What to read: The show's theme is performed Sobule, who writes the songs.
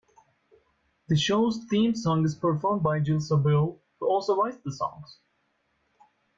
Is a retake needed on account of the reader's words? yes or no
yes